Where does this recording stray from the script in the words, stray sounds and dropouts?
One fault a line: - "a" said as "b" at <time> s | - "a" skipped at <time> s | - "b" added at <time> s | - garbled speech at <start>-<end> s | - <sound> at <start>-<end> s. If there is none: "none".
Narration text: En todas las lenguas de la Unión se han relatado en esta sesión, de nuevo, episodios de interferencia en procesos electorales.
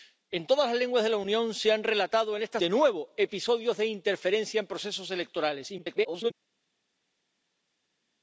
- "sesión" skipped at 2.6 s
- garbled speech at 5.8-6.3 s